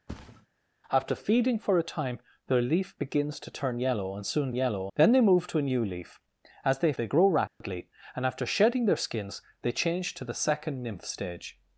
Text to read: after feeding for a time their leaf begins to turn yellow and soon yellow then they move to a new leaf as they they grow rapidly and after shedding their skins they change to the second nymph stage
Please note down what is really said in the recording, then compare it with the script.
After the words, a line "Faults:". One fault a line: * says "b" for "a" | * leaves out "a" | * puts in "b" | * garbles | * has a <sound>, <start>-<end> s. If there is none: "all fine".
after feeding for a time their leaf begins to turn yellow and soon yellow then they move to a new leaf as they they grow rapidly and after shedding their skins they change to the second nymph stage
Faults:
* has a thud, 0.1-0.5 s
* has a dropout, 7.5-7.6 s